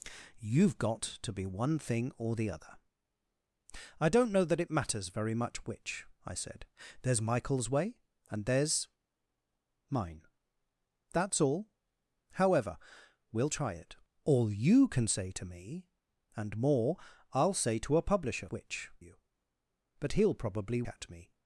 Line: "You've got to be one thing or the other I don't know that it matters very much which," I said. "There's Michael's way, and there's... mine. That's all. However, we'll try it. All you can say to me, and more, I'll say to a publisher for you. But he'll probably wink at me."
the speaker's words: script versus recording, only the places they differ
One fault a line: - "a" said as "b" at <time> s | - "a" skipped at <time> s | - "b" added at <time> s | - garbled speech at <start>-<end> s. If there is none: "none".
- "for" said as "which" at 18.5 s
- "wink" skipped at 20.8 s